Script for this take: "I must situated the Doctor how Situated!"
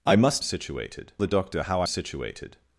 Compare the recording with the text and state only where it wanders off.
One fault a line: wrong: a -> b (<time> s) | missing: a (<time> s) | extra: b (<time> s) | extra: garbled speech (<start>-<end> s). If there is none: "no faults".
no faults